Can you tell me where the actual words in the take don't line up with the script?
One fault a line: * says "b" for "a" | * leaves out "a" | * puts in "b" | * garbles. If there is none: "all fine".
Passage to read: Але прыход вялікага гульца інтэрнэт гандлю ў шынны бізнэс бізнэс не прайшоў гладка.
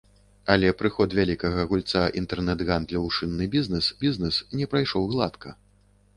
all fine